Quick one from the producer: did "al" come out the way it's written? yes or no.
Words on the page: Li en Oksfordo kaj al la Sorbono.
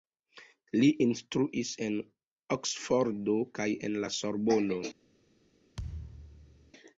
no